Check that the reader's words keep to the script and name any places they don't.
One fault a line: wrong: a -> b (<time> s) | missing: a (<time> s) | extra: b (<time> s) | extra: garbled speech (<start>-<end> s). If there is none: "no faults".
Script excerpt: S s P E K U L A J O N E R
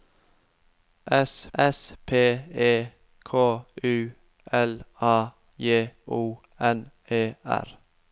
no faults